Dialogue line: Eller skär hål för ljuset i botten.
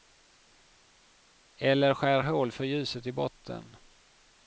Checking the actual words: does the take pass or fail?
pass